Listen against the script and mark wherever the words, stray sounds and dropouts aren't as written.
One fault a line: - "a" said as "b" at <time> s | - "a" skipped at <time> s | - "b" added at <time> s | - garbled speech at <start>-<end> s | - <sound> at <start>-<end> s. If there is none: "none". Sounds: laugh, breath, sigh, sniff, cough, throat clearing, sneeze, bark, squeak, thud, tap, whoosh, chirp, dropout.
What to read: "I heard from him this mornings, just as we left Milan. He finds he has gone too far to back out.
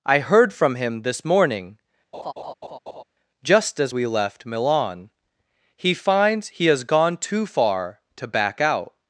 - "mornings" said as "morning" at 1.2 s
- laugh at 2.1-3.0 s